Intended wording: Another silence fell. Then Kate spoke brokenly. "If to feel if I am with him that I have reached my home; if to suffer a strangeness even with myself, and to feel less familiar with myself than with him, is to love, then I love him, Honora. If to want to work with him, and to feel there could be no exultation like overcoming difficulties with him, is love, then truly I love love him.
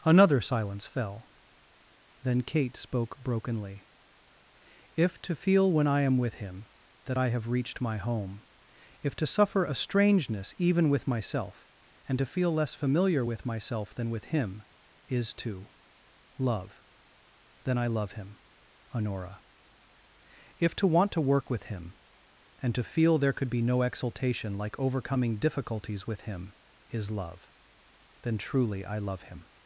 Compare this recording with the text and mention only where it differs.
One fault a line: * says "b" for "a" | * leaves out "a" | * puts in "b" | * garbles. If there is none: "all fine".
* says "when" for "if"
* leaves out "love"